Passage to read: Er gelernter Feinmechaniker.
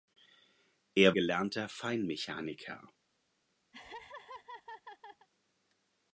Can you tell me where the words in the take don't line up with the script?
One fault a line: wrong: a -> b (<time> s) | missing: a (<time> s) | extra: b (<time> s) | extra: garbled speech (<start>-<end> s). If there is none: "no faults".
no faults